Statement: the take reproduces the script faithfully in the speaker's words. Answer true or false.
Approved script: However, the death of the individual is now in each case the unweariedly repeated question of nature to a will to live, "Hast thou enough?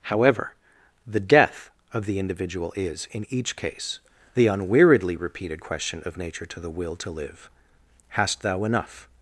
false